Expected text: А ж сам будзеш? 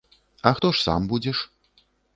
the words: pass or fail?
fail